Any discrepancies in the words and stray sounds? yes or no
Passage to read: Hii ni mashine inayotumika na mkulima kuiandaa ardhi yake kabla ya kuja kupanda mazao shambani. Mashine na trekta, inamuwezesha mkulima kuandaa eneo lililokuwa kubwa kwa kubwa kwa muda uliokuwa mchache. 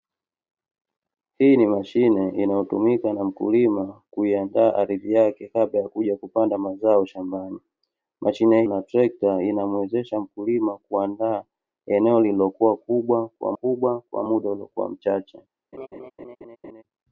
yes